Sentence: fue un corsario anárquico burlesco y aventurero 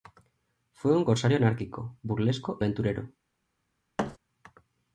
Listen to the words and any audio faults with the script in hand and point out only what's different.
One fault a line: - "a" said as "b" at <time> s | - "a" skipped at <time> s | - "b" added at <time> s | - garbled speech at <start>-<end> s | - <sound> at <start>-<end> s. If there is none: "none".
- "y" skipped at 2.6 s
- thud at 4.0-4.2 s